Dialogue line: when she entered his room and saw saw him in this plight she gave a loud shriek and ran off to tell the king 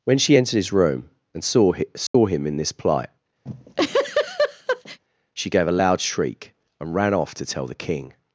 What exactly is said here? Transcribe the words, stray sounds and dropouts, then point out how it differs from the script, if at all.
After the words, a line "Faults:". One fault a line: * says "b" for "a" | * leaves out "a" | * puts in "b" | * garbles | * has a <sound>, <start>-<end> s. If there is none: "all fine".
when she entered his room and saw saw him in this plight she gave a loud shriek and ran off to tell the king
Faults:
* has a dropout, 2.1-2.1 s
* has a laugh, 3.5-5.0 s